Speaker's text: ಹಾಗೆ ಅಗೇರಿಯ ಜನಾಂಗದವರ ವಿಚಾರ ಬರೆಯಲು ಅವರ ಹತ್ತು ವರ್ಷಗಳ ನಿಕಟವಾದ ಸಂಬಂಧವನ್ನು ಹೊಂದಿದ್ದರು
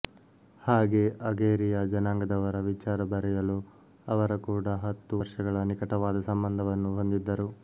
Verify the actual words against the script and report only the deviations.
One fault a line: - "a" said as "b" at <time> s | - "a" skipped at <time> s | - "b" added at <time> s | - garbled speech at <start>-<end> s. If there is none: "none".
- "ಕೂಡ" added at 4.5 s